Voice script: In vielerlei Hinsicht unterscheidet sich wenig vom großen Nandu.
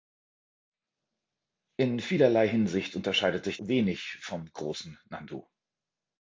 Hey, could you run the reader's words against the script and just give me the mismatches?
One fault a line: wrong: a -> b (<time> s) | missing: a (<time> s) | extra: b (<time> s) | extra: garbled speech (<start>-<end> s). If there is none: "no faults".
no faults